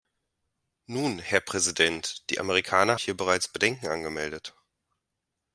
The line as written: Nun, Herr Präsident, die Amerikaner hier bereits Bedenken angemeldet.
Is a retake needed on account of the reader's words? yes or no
no